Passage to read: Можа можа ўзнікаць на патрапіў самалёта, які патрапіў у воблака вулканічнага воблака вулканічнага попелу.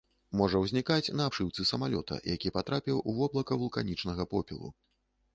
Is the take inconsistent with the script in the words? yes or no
yes